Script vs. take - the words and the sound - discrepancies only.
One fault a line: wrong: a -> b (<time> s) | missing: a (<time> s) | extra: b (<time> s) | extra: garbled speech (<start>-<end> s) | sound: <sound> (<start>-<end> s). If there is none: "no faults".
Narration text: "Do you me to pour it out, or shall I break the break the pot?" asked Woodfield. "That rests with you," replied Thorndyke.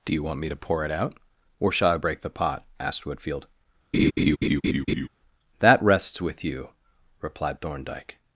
extra: want (0.2 s)
missing: break the (2.3 s)
sound: laugh (3.9-5.1 s)